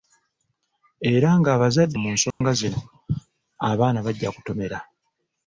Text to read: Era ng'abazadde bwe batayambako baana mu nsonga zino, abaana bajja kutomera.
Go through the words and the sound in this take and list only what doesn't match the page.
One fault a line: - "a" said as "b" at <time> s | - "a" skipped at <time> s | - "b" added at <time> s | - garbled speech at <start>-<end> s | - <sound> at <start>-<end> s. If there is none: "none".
- "bwe batayambako baana" skipped at 2.0 s
- dropout at 2.3-2.4 s